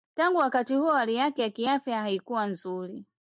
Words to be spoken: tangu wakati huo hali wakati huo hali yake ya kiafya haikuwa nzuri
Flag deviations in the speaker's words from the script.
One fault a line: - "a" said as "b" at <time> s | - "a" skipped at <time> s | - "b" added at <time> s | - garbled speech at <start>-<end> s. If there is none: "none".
- "wakati huo hali" skipped at 1.1 s